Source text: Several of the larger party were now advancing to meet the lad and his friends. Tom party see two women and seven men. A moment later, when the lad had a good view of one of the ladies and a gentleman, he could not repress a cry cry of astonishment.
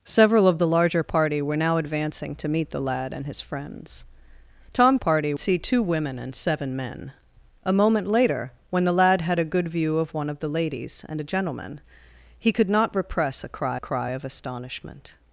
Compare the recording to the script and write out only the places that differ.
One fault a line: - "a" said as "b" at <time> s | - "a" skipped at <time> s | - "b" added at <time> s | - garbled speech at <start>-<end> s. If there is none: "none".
none